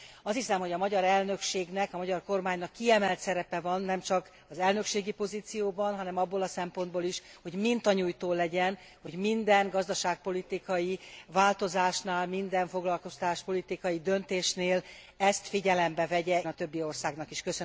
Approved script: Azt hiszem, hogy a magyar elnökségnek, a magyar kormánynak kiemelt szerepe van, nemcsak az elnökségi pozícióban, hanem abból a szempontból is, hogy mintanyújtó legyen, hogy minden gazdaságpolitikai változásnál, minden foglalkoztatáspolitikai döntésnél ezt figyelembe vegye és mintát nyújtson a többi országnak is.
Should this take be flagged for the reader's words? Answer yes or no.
yes